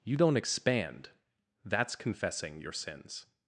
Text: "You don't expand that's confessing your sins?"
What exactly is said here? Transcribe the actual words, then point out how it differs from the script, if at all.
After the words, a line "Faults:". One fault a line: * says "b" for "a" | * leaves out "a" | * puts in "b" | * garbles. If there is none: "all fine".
"You don't expand that's confessing your sins?"
Faults:
all fine